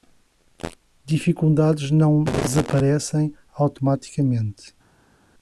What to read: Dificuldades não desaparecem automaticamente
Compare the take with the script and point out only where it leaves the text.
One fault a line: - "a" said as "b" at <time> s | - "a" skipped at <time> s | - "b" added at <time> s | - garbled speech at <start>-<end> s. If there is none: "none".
none